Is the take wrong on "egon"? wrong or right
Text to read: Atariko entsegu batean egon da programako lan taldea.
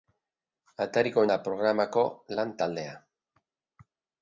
wrong